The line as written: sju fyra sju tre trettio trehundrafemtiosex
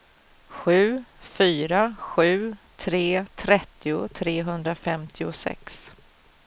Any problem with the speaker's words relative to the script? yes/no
no